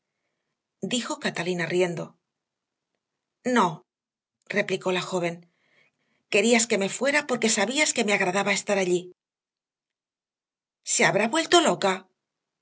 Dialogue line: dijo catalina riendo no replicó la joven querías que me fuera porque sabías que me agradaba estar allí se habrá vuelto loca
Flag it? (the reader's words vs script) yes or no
no